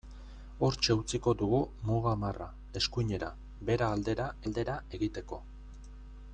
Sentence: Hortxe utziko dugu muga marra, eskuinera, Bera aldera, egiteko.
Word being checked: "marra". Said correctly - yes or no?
yes